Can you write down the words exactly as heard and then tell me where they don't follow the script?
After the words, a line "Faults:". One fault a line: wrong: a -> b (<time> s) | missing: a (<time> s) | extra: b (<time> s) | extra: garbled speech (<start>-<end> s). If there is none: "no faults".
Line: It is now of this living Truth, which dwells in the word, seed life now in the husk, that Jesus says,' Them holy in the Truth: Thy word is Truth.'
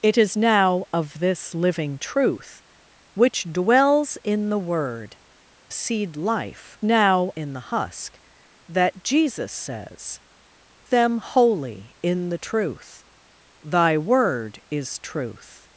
It is now of this living Truth, which dwells in the word, seed life now in the husk, that Jesus says,' Them holy in the Truth: Thy word is Truth.'
Faults:
no faults